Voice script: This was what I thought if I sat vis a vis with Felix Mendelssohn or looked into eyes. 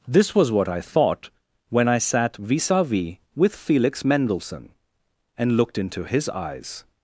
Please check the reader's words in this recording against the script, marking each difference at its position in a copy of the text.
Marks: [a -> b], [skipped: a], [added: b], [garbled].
This was what I thought [if -> when] I sat vis a vis with Felix Mendelssohn [or -> and] looked into [added: his] eyes.